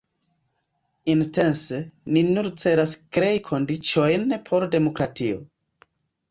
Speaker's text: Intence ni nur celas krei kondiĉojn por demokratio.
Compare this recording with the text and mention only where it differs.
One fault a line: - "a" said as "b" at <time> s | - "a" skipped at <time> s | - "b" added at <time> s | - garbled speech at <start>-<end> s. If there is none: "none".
none